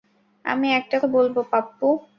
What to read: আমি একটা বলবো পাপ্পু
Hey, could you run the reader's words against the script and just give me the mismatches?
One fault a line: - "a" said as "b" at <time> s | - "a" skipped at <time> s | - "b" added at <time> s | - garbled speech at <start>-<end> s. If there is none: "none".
none